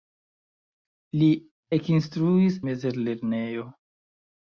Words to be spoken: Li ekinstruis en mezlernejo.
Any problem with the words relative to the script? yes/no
yes